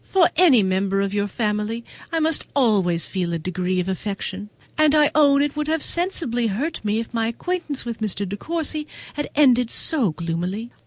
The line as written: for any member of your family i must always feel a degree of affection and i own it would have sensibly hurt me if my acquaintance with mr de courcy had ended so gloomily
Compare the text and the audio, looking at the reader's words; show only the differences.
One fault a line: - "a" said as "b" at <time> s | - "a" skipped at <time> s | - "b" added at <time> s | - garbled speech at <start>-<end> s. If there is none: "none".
none